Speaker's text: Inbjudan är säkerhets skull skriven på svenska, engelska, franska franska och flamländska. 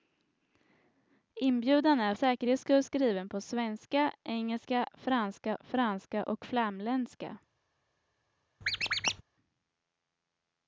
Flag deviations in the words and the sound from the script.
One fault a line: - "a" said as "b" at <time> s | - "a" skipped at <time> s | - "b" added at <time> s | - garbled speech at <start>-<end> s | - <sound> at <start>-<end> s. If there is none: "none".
- squeak at 8.6-9.2 s